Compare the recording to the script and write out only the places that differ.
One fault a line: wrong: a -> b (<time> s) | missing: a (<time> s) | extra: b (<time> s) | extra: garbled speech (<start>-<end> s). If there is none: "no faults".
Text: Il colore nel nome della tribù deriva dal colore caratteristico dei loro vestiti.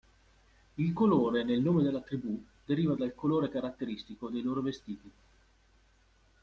no faults